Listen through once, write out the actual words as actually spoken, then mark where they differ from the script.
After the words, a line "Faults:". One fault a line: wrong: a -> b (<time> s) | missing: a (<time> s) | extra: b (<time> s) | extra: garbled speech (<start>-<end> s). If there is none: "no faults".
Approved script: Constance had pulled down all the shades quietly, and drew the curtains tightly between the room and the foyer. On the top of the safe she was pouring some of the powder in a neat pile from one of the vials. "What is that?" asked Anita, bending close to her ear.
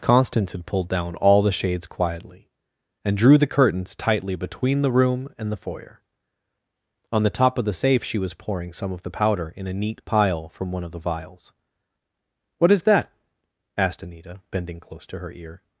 Constance had pulled down all the shades quietly, and drew the curtains tightly between the room and the foyer. On the top of the safe she was pouring some of the powder in a neat pile from one of the vials. "What is that?" asked Anita, bending close to her ear.
Faults:
no faults